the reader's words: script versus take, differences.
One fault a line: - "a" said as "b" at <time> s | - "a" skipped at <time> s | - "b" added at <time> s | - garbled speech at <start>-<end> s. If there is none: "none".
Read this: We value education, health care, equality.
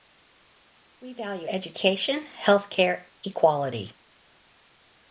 none